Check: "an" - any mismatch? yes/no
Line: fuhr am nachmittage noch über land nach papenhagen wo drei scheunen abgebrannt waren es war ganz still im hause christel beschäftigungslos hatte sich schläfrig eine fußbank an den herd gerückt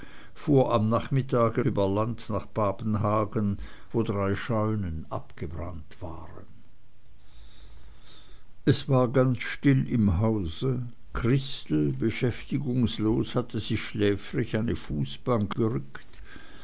yes